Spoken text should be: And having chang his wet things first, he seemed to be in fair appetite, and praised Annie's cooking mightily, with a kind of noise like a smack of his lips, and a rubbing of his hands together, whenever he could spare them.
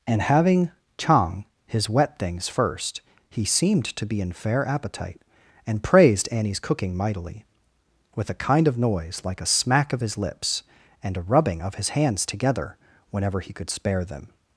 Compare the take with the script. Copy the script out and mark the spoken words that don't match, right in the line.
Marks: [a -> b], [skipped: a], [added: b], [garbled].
And having chang his wet things first, he seemed to be in fair appetite, and praised Annie's cooking mightily, with a kind of noise like a smack of his lips, and a rubbing of his hands together, whenever he could spare them.